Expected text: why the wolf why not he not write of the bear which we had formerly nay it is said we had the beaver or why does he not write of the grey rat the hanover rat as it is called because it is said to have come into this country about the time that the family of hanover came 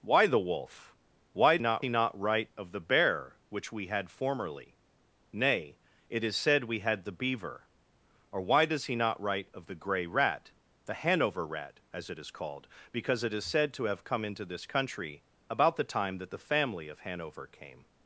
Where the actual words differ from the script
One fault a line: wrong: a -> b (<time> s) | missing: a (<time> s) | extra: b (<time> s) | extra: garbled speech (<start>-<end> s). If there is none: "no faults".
no faults